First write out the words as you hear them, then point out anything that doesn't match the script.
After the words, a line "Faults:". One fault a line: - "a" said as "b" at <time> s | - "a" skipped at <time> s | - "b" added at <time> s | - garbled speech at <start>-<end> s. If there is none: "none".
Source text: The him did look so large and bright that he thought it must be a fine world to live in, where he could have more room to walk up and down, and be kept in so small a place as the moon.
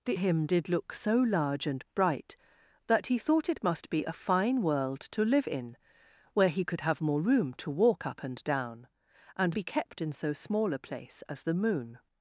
The him did look so large and bright that he thought it must be a fine world to live in, where he could have more room to walk up and down, and be kept in so small a place as the moon.
Faults:
none